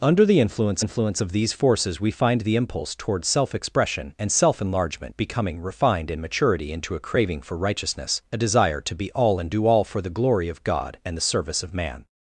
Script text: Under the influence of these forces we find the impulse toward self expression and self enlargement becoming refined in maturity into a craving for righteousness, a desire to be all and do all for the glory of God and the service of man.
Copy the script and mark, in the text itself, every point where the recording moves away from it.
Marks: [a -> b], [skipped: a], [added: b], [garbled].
Under the influence [added: influence] of these forces we find the impulse toward self expression and self enlargement becoming refined in maturity into a craving for righteousness, a desire to be all and do all for the glory of God and the service of man.